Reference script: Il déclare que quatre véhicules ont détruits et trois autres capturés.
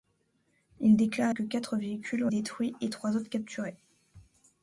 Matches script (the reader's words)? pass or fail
pass